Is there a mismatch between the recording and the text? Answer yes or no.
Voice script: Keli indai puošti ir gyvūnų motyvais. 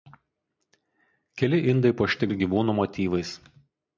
no